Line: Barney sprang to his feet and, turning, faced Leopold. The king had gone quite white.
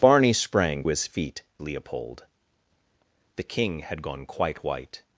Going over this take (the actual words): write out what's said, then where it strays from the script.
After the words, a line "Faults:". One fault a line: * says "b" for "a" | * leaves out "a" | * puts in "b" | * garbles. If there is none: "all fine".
Barney sprang his feet Leopold. The king had gone quite white.
Faults:
* leaves out "to"
* leaves out "and turning faced"